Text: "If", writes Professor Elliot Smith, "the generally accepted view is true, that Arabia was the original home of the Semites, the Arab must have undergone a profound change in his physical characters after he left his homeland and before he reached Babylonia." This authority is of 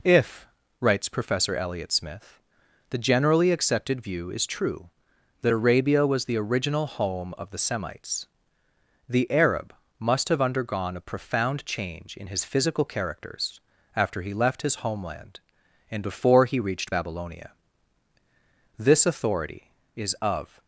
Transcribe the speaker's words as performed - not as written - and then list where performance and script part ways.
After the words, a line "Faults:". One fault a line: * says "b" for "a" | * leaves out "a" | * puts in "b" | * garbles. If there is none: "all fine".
"If", writes Professor Elliot Smith, "the generally accepted view is true, that Arabia was the original home of the Semites, the Arab must have undergone a profound change in his physical characters after he left his homeland and before he reached Babylonia." This authority is of
Faults:
all fine